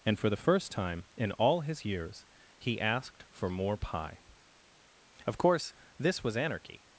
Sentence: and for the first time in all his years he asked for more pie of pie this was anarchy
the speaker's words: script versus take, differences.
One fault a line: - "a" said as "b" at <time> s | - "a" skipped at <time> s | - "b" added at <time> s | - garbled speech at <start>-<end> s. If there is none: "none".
- "pie" said as "course" at 5.4 s